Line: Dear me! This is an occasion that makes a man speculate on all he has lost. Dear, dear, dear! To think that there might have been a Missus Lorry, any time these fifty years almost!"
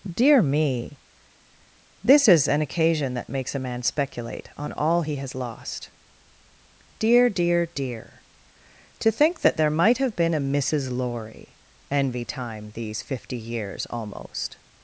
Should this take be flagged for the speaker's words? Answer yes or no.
yes